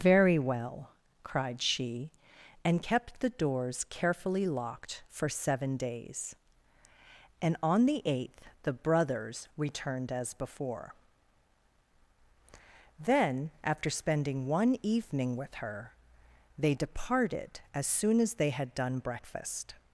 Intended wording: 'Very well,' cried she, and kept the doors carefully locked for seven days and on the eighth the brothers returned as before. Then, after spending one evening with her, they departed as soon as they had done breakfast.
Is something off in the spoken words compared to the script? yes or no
no